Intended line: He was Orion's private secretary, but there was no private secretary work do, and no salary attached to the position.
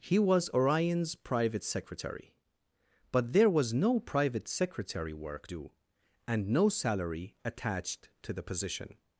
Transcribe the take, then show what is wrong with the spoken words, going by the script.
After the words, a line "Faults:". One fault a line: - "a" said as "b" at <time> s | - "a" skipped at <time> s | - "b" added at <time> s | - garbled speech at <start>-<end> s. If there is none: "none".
He was Orion's private secretary, but there was no private secretary work do, and no salary attached to the position.
Faults:
none